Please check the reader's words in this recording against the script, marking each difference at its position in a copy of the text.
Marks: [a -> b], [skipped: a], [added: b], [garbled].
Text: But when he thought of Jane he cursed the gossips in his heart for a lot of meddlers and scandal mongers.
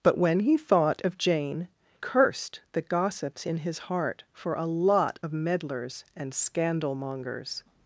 But when he thought of Jane [skipped: he] cursed the gossips in his heart for a lot of meddlers and scandal mongers.